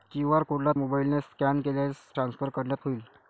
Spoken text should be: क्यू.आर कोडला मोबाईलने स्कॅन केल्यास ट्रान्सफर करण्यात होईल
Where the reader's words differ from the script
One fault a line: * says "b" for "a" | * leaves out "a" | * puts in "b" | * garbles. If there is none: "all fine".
all fine